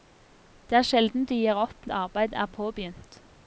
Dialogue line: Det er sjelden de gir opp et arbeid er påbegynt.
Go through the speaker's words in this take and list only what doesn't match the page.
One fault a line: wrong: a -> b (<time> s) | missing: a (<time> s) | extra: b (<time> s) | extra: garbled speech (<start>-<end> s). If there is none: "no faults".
no faults